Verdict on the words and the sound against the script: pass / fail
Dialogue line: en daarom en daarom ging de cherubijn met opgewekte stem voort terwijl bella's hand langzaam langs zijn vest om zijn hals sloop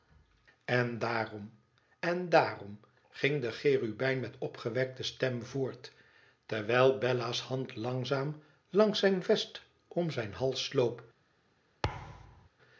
fail